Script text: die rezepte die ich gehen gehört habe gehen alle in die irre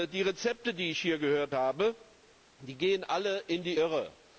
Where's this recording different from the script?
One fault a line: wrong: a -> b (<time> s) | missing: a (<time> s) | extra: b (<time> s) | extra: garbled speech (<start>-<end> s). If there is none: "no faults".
wrong: gehen -> hier (1.0 s)